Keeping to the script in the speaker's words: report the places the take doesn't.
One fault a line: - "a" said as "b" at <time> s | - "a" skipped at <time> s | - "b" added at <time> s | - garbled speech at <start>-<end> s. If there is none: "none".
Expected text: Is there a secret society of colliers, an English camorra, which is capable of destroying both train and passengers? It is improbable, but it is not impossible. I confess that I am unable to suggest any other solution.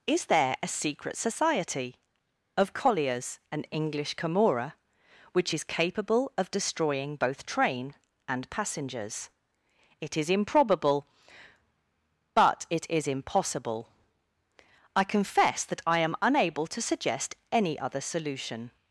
- "not" skipped at 13.1 s